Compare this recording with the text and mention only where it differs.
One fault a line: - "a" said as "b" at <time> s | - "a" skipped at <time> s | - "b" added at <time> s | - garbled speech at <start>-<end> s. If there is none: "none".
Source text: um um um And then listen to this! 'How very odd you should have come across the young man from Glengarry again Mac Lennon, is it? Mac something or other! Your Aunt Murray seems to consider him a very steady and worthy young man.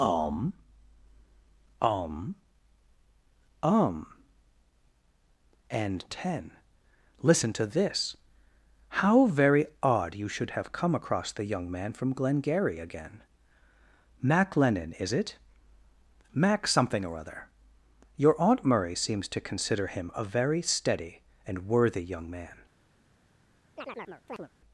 - "then" said as "ten" at 6.1 s